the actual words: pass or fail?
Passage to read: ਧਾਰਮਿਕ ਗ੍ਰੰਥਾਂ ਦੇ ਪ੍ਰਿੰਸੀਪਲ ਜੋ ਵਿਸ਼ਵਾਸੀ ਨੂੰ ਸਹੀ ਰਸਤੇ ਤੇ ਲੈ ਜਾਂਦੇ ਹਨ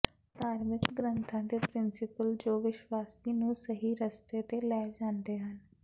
pass